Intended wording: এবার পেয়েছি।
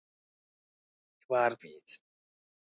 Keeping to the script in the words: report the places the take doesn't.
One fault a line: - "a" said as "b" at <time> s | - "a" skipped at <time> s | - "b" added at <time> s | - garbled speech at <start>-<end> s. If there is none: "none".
none